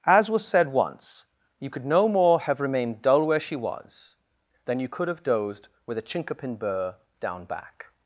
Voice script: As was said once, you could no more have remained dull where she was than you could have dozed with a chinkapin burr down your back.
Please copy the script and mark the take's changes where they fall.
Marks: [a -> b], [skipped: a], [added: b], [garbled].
As was said once, you could no more have remained dull where she was than you could have dozed with a chinkapin burr down [skipped: your] back.